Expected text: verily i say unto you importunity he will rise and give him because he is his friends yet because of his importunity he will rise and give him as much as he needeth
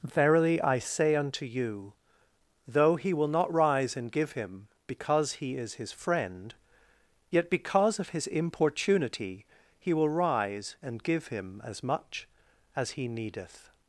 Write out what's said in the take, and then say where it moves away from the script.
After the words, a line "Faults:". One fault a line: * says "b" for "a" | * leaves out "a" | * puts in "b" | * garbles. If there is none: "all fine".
verily i say unto you though he will not rise and give him because he is his friend yet because of his importunity he will rise and give him as much as he needeth
Faults:
* says "though" for "importunity"
* puts in "not"
* says "friend" for "friends"